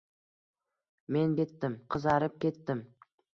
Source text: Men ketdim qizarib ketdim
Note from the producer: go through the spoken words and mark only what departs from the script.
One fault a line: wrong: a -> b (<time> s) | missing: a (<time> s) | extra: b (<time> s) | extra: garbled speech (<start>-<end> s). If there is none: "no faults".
no faults